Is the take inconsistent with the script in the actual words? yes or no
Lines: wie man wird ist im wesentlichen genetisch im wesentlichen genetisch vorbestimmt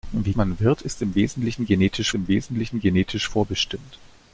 no